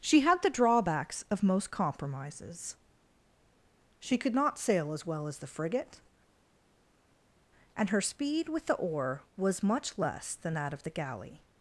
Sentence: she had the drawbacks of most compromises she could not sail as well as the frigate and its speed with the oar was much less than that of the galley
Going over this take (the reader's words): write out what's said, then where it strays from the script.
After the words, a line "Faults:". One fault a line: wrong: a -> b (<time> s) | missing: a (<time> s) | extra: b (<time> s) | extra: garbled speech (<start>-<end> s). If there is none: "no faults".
she had the drawbacks of most compromises she could not sail as well as the frigate and her speed with the oar was much less than that of the galley
Faults:
wrong: its -> her (7.9 s)